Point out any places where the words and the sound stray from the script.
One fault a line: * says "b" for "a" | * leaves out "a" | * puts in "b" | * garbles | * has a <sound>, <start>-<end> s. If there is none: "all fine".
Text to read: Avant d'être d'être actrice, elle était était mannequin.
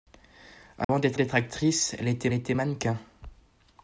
* has a dropout, 0.8-0.9 s